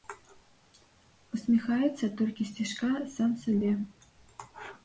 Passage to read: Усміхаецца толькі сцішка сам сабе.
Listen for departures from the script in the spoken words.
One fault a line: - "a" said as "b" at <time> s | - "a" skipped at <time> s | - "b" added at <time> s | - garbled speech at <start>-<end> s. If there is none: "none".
none